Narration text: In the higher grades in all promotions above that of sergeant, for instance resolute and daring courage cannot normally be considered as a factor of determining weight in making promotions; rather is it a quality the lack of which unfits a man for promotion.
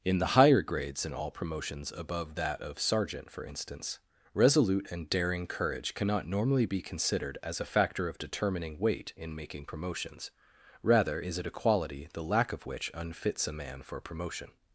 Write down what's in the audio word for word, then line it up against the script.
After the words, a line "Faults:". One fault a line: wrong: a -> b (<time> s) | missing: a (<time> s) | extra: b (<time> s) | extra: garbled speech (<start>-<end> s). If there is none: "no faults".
In the higher grades in all promotions above that of sergeant, for instance resolute and daring courage cannot normally be considered as a factor of determining weight in making promotions; rather is it a quality the lack of which unfits a man for promotion.
Faults:
no faults